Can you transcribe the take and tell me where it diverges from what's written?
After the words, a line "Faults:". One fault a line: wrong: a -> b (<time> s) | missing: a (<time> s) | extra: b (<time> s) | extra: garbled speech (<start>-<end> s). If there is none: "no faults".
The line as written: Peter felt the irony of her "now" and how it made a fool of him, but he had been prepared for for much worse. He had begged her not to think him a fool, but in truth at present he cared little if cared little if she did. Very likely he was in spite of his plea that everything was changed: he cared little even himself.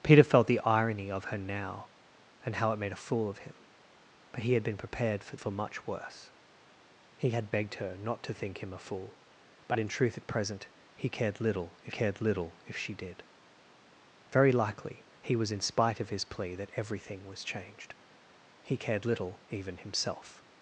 Peter felt the irony of her "now" and how it made a fool of him, but he had been prepared for for much worse. He had begged her not to think him a fool, but in truth at present he cared little if cared little if she did. Very likely he was in spite of his plea that everything was changed: he cared little even himself.
Faults:
no faults